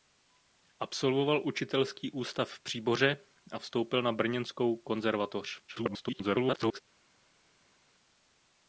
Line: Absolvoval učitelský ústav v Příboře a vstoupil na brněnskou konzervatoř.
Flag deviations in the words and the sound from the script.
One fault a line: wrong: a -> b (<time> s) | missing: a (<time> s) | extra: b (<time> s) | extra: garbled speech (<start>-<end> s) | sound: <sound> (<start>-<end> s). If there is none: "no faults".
extra: garbled speech (5.7-6.8 s)